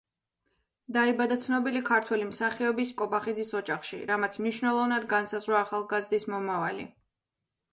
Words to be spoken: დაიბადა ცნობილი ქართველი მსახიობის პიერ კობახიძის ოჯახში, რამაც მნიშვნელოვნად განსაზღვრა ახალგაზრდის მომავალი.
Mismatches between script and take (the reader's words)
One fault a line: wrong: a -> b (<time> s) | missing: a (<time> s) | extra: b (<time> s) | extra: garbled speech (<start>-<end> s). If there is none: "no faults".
missing: პიერ (3.0 s)